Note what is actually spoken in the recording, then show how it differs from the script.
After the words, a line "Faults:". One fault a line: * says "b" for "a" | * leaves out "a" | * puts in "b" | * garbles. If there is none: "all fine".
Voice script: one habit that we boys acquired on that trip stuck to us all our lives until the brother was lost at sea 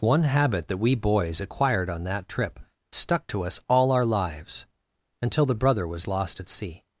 one habit that we boys acquired on that trip stuck to us all our lives until the brother was lost at sea
Faults:
all fine